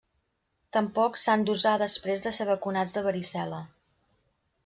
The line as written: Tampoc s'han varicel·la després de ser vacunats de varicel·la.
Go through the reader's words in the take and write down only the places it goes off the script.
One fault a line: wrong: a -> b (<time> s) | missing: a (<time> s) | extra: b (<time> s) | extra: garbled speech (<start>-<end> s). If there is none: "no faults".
wrong: varicel·la -> d'usar (1.5 s)